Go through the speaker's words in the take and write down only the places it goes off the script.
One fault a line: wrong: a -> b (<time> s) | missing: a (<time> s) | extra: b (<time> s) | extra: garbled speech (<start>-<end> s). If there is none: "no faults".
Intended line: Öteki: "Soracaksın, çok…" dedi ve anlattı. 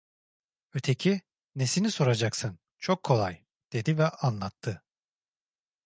extra: Nesini (1.6 s)
extra: kolay (3.0 s)